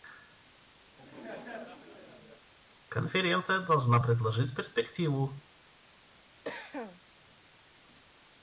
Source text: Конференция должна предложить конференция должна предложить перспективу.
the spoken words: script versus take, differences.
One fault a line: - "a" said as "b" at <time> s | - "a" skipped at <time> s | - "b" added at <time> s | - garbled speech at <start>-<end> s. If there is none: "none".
- "конференция должна предложить" skipped at 4.5 s